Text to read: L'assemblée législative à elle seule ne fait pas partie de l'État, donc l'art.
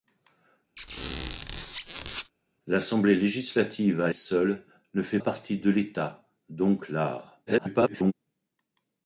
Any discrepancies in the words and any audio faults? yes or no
yes